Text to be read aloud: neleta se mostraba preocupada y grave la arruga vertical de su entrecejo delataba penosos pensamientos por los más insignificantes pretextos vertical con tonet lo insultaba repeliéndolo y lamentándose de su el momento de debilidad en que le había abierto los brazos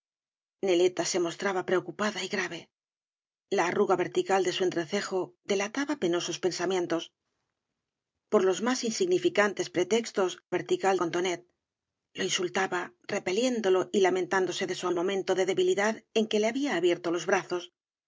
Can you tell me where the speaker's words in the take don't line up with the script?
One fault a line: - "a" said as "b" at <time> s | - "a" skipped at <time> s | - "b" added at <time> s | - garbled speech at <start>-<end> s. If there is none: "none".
none